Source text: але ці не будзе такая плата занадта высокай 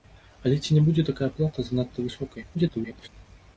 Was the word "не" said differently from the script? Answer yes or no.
no